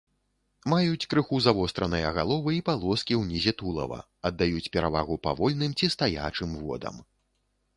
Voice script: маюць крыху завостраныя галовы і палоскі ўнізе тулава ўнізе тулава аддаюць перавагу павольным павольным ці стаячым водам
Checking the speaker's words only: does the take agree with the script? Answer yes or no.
no